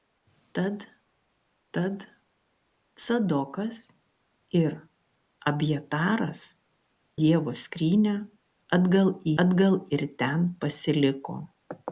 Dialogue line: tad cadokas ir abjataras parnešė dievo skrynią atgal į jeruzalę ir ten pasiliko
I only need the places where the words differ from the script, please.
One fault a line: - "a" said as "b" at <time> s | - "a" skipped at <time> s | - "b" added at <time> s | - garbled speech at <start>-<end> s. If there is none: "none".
- "tad" added at 1.8 s
- "parnešė" skipped at 6.4 s
- "jeruzalę" said as "atgal" at 9.4 s